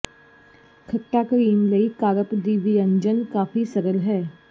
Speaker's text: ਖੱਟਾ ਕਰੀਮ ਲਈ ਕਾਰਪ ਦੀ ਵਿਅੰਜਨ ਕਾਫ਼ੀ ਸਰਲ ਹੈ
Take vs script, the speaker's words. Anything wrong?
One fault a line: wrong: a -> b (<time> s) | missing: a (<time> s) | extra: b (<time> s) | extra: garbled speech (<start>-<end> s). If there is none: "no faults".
no faults